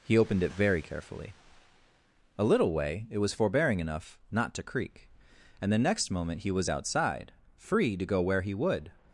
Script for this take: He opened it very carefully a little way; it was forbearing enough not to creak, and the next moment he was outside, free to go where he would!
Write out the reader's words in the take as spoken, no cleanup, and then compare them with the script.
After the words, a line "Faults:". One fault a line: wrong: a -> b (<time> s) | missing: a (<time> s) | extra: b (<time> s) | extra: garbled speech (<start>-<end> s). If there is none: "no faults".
He opened it very carefully a little way; it was forbearing enough not to creak, and the next moment he was outside, free to go where he would!
Faults:
no faults